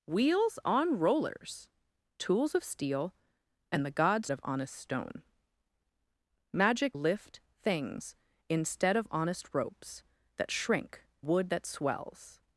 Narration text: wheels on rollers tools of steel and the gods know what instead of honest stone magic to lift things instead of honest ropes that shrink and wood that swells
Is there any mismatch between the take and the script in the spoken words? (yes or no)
yes